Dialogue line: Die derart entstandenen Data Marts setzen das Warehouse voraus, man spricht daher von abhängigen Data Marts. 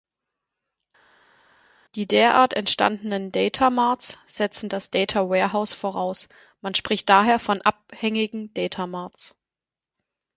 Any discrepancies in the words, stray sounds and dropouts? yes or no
yes